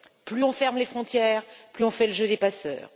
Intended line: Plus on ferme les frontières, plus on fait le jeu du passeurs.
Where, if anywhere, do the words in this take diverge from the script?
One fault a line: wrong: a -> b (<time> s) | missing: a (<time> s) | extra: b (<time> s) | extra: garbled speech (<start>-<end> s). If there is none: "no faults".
wrong: du -> des (2.3 s)